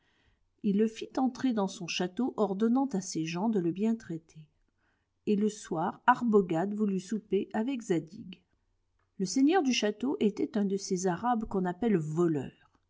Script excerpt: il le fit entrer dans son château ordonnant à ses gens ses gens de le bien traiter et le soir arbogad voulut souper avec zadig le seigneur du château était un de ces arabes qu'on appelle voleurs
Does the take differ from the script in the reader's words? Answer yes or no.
yes